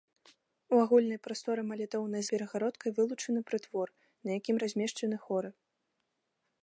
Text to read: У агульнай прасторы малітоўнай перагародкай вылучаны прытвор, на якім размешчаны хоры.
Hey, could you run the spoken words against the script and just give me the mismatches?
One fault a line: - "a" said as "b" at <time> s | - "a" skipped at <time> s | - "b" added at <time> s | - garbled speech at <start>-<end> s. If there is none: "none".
none